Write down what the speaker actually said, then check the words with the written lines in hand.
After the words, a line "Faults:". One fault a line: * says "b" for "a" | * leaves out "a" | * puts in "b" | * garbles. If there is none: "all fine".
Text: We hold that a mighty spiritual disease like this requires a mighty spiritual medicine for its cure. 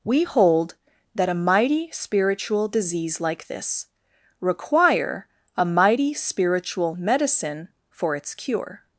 We hold that a mighty spiritual disease like this require a mighty spiritual medicine for its cure.
Faults:
* says "require" for "requires"